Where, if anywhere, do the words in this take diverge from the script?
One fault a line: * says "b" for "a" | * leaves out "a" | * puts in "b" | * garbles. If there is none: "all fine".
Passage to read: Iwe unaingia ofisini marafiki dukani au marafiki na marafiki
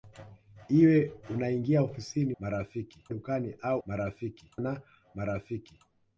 all fine